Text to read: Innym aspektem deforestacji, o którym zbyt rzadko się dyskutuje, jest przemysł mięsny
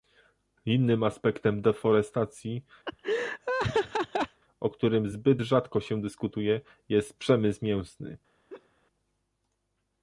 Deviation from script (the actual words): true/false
false